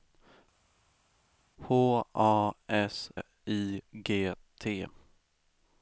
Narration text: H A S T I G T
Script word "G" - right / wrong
right